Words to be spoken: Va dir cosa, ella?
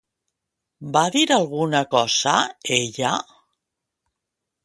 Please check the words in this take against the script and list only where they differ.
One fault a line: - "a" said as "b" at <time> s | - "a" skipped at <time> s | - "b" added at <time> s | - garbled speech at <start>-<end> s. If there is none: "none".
- "alguna" added at 1.4 s